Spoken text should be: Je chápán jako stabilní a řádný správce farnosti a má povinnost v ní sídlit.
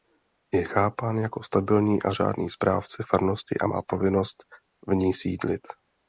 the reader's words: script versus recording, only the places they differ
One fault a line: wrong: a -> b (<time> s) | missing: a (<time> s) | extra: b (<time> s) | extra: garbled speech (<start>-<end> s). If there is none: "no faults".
no faults